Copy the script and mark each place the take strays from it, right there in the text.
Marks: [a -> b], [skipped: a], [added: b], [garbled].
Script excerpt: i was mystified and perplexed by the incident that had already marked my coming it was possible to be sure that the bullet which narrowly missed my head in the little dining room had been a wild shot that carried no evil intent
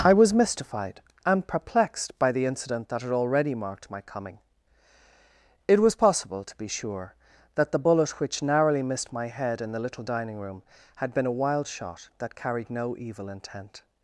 i was mystified and perplexed by the incident that had already marked my coming it was possible to be sure that the bullet which narrowly missed my head in the little dining room had been a wild shot that carried no evil intent